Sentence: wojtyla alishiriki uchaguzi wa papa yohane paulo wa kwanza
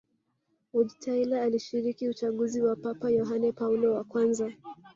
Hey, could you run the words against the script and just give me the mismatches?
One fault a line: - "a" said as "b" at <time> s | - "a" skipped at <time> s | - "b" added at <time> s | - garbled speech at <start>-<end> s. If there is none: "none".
none